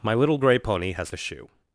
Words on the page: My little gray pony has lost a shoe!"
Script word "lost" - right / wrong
wrong